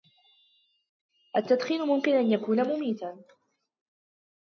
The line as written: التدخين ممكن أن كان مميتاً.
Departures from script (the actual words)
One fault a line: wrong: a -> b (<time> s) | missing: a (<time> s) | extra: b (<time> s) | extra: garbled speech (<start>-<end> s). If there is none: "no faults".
wrong: كان -> يكون (2.3 s)